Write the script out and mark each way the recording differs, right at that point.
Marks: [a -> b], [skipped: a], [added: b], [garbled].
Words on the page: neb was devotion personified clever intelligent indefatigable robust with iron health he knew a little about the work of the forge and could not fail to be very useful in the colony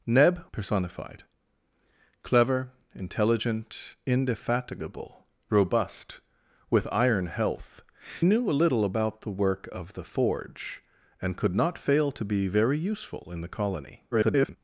neb [skipped: was devotion] personified clever intelligent indefatigable robust with iron health [skipped: he] knew a little about the work of the forge and could not fail to be very useful in the colony [garbled]